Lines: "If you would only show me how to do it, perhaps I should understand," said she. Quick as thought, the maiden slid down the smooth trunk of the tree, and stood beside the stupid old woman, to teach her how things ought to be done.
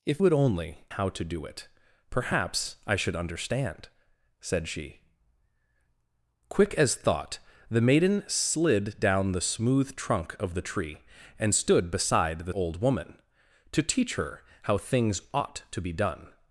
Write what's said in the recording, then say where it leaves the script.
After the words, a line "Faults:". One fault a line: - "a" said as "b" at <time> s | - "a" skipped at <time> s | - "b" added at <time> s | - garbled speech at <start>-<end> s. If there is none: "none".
"If would only how to do it, perhaps I should understand," said she. Quick as thought, the maiden slid down the smooth trunk of the tree, and stood beside the old woman, to teach her how things ought to be done.
Faults:
- "you" skipped at 0.2 s
- "show me" skipped at 0.9 s
- "stupid" skipped at 12.5 s